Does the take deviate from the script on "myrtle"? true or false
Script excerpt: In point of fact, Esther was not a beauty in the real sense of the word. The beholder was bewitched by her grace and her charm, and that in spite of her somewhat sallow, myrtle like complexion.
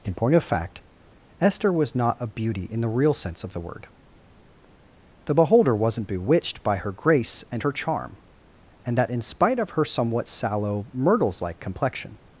true